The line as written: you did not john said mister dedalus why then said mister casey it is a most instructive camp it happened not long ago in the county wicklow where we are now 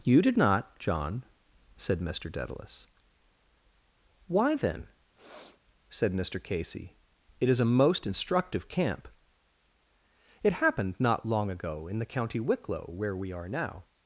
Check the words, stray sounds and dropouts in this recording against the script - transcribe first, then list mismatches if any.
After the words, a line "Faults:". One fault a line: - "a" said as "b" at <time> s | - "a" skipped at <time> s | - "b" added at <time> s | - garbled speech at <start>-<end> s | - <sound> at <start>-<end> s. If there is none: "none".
you did not john said mister dedalus why then said mister casey it is a most instructive camp it happened not long ago in the county wicklow where we are now
Faults:
- sniff at 5.2-5.6 s